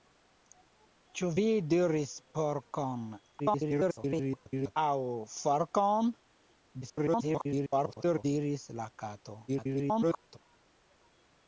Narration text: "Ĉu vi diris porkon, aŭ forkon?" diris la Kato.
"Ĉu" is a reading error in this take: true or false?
false